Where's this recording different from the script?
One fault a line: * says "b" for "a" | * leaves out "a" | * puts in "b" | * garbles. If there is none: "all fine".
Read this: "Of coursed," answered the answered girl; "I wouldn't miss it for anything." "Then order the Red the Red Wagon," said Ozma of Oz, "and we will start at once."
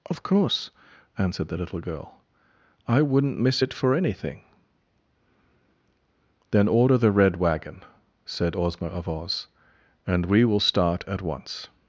* says "course" for "coursed"
* says "little" for "answered"
* leaves out "the Red"